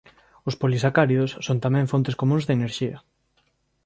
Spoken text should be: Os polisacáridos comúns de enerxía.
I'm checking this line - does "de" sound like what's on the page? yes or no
yes